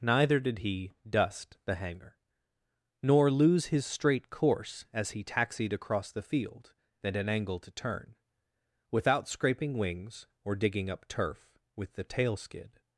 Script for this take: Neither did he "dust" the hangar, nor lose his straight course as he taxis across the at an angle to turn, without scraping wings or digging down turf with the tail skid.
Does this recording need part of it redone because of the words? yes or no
yes